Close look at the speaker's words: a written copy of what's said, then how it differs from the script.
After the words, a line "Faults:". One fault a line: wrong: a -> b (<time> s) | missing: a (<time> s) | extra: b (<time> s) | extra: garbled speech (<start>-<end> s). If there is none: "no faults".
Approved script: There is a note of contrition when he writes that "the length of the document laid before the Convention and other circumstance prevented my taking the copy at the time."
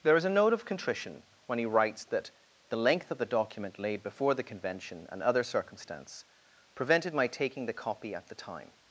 There is a note of contrition when he writes that "the length of the document laid before the Convention and other circumstance prevented my taking the copy at the time."
Faults:
no faults